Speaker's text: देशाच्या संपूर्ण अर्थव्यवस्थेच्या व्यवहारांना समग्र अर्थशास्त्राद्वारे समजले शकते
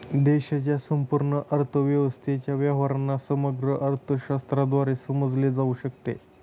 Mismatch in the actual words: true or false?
true